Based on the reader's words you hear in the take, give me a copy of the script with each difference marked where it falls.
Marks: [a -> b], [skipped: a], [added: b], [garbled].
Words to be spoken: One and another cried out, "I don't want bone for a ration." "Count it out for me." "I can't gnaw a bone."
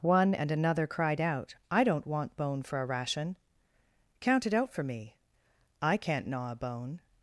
One and another cried out, "I don't want bone for a ration." "Count it out for me." "I can't gnaw a bone."